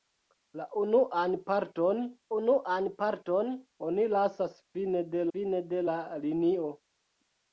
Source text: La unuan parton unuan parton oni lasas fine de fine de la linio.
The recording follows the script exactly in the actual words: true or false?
true